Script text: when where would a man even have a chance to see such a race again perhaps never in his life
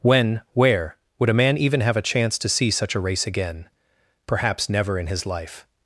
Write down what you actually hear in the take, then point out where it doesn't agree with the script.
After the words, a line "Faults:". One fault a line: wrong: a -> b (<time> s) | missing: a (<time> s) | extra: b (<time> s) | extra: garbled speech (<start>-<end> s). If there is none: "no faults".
when where would a man even have a chance to see such a race again perhaps never in his life
Faults:
no faults